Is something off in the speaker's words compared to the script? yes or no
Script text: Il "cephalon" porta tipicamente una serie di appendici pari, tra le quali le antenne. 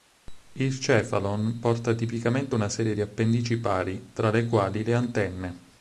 no